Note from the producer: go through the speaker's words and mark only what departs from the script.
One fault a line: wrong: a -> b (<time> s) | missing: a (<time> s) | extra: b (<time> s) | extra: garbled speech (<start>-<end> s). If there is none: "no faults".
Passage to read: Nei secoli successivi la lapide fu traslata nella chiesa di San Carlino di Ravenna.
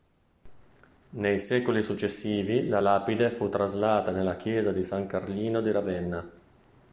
no faults